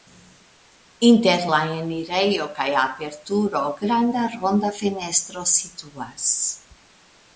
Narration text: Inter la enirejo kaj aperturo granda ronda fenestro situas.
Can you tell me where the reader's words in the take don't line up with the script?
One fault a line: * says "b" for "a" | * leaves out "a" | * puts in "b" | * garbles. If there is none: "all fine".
all fine